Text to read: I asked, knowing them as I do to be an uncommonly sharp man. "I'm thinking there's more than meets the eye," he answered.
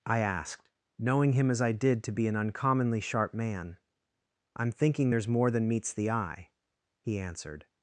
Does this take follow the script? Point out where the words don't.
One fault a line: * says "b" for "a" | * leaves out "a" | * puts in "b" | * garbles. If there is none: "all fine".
* says "him" for "them"
* says "did" for "do"